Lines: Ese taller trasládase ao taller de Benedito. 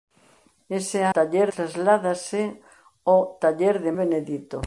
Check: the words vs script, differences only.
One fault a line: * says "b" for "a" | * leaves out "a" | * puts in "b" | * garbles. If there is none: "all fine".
all fine